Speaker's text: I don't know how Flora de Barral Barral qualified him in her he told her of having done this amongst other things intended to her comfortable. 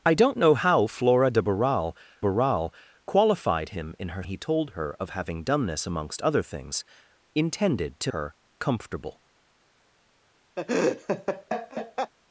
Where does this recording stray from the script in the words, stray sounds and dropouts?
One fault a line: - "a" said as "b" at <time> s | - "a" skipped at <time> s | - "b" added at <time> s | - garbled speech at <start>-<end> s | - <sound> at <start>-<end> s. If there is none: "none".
- laugh at 10.6-12.1 s